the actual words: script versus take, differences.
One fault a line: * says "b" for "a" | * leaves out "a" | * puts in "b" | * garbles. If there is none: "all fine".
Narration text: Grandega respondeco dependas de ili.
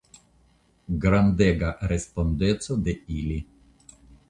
* leaves out "dependas"